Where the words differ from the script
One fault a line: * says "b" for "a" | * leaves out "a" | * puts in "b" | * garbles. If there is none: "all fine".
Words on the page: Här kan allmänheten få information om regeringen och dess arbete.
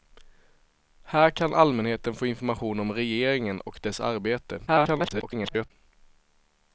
* garbles